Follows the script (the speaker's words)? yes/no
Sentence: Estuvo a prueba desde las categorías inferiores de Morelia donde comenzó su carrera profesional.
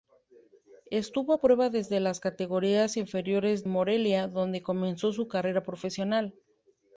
no